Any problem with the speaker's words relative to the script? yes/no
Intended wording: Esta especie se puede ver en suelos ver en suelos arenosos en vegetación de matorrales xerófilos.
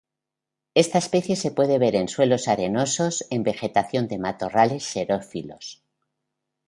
yes